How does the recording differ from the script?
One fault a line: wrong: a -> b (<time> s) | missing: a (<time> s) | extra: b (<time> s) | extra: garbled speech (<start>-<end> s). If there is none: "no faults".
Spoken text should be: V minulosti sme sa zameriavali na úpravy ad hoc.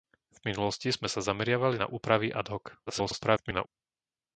extra: garbled speech (2.9-3.7 s)